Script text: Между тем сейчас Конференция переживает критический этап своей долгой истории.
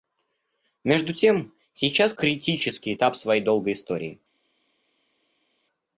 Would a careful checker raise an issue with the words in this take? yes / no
yes